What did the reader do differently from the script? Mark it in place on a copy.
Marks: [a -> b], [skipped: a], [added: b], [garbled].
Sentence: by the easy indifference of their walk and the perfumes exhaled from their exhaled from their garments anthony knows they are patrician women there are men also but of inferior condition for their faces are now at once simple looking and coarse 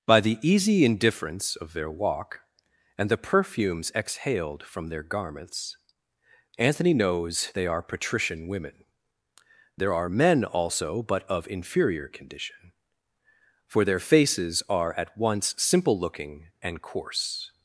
by the easy indifference of their walk and the perfumes exhaled from their [skipped: exhaled from their] garments anthony knows they are patrician women there are men also but of inferior condition for their faces are [skipped: now] at once simple looking and coarse